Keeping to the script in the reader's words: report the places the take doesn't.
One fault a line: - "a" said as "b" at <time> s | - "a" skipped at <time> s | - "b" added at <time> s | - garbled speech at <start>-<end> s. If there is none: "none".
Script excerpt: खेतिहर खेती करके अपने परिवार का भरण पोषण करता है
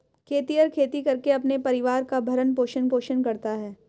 - "पोषण" added at 2.9 s